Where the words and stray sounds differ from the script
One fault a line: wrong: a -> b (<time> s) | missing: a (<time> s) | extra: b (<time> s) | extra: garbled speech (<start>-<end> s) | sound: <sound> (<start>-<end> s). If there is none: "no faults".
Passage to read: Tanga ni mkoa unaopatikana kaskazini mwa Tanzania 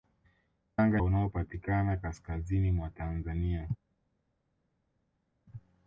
missing: ni mkoa (1.0 s)